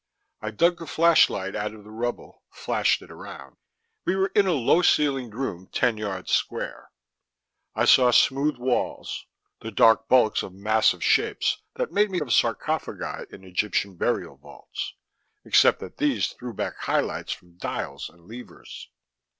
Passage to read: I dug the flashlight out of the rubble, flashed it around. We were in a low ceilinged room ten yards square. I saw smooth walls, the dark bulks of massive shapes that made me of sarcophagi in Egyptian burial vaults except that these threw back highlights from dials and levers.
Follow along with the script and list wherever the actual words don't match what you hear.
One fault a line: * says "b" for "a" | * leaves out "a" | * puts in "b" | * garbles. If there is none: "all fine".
all fine